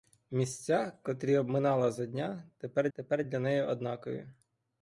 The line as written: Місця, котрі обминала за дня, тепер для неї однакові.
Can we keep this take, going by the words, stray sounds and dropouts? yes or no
no